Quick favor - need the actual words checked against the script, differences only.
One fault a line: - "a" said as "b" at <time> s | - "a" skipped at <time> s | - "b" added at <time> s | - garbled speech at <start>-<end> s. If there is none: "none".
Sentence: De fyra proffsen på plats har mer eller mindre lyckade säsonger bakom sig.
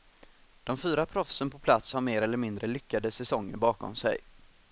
none